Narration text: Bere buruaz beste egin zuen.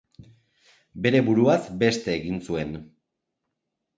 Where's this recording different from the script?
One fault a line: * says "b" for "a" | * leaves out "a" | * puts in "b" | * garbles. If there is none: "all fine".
all fine